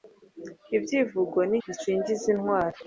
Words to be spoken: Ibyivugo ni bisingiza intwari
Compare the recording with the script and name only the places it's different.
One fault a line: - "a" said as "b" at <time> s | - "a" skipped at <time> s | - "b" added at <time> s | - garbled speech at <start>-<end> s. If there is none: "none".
none